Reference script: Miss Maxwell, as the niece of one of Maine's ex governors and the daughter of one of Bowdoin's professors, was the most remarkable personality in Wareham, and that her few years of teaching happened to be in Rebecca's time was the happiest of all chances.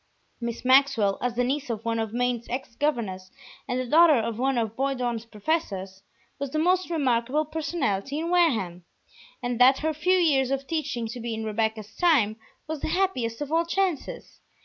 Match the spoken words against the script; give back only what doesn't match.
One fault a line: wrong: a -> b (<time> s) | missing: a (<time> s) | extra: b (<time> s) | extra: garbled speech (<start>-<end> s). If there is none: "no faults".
missing: happened (11.1 s)